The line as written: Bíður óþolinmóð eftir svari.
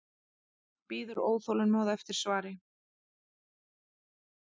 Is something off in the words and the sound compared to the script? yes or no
no